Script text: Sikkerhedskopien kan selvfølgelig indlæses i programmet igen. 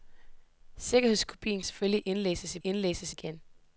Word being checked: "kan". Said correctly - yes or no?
no